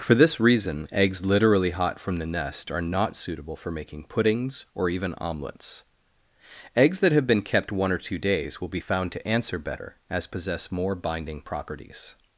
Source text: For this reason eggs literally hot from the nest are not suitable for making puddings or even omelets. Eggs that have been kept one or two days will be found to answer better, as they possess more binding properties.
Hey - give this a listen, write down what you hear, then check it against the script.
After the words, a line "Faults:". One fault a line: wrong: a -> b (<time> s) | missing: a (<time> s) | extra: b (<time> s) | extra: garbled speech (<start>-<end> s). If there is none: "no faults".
For this reason eggs literally hot from the nest are not suitable for making puddings or even omelets. Eggs that have been kept one or two days will be found to answer better, as possess more binding properties.
Faults:
missing: they (10.2 s)